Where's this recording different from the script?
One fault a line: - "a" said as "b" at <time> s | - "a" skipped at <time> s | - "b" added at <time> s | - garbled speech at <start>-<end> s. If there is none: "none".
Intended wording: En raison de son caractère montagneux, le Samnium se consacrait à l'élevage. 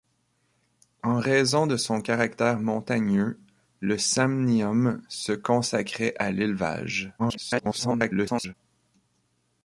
- garbled speech at 7.2-8.5 s